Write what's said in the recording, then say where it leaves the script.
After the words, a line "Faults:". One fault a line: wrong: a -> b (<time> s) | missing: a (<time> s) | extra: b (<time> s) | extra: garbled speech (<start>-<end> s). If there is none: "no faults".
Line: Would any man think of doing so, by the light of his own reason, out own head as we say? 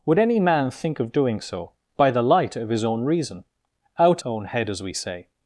Would any man think of doing so, by the light of his own reason, out own head as we say?
Faults:
no faults